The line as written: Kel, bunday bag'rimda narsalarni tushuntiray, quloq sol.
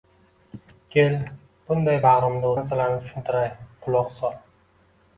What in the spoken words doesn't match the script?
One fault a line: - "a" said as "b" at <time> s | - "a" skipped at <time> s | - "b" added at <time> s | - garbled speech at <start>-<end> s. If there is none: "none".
none